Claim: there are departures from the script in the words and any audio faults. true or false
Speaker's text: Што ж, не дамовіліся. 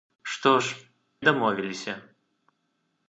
true